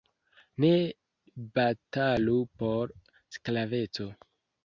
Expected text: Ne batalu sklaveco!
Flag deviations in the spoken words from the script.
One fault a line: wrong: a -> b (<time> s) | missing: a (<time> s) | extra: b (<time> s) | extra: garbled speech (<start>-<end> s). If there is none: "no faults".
extra: por (2.6 s)